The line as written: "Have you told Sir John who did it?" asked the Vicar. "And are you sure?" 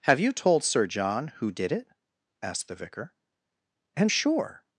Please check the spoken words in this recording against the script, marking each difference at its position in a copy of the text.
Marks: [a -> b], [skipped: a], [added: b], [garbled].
"Have you told Sir John who did it?" asked the Vicar. "And [skipped: are you] sure?"